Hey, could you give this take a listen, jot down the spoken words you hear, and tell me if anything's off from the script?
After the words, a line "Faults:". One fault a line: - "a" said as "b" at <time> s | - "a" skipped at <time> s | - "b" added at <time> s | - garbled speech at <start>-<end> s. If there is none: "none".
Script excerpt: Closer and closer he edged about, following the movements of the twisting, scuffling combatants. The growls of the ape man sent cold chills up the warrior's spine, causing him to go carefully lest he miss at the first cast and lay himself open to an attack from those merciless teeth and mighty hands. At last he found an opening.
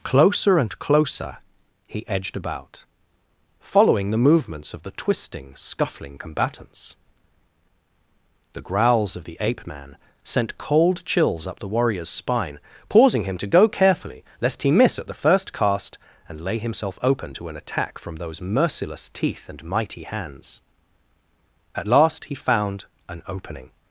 Closer and closer he edged about, following the movements of the twisting, scuffling combatants. The growls of the ape man sent cold chills up the warrior's spine, pausing him to go carefully lest he miss at the first cast and lay himself open to an attack from those merciless teeth and mighty hands. At last he found an opening.
Faults:
- "causing" said as "pausing" at 12.9 s